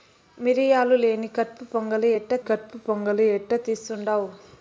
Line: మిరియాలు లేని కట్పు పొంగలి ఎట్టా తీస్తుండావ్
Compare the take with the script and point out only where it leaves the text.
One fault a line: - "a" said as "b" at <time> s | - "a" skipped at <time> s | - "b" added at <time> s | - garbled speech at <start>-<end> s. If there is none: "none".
- "కట్పు పొంగలి ఎట్టా" added at 2.5 s